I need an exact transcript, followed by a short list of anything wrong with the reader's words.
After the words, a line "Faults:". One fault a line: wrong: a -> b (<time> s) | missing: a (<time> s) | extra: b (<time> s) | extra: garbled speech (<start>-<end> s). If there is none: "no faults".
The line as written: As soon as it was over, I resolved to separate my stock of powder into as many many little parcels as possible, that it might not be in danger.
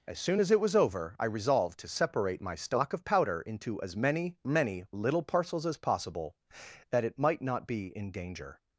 As soon as it was over, I resolved to separate my stock of powder into as many many little parcels as possible, that it might not be in danger.
Faults:
no faults